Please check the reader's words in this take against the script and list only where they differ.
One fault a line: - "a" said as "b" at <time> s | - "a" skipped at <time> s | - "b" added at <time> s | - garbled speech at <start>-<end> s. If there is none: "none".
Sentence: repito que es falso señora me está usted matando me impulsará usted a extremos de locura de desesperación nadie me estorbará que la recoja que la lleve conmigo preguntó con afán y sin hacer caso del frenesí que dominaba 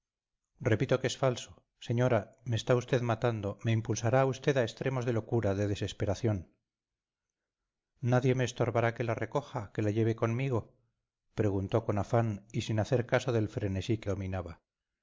none